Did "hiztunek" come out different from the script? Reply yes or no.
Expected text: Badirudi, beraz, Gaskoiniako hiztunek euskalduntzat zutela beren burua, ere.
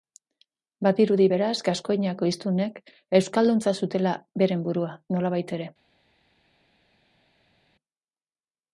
no